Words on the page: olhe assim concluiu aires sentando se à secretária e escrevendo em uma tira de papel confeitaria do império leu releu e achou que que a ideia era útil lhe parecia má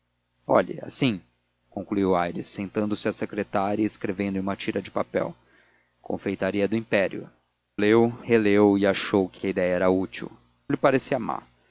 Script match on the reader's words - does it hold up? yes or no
yes